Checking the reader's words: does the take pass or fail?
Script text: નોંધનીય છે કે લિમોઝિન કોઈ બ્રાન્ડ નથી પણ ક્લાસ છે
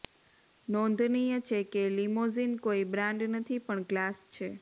pass